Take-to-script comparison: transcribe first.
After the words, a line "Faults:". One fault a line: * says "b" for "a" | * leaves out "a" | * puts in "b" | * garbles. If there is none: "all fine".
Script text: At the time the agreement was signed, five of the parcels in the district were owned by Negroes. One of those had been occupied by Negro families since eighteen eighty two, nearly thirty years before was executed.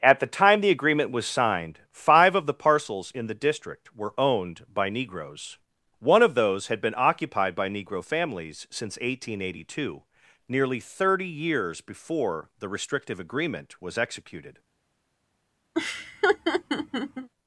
At the time the agreement was signed, five of the parcels in the district were owned by Negroes. One of those had been occupied by Negro families since eighteen eighty two, nearly thirty years before the restrictive agreement was executed.
Faults:
* puts in "the restrictive agreement"